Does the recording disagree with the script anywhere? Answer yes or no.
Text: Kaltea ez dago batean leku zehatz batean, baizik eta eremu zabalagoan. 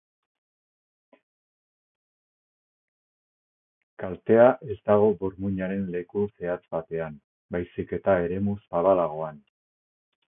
yes